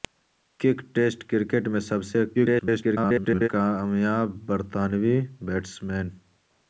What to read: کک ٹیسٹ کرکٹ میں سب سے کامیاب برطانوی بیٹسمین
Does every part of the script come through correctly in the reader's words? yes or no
no